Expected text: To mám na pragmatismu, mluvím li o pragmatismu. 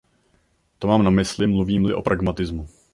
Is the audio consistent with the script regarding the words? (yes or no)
no